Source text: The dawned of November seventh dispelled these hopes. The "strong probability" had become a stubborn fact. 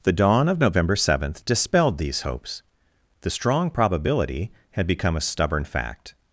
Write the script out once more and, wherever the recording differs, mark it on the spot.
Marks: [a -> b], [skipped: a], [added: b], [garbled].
The [dawned -> dawn] of November seventh dispelled these hopes. The "strong probability" had become a stubborn fact.